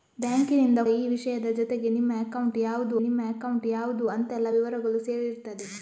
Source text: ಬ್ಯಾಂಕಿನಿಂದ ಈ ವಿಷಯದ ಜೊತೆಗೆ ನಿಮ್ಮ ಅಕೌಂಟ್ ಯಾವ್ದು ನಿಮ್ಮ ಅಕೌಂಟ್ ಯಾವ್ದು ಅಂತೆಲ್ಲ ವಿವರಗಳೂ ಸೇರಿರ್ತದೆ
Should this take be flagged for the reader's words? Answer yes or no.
no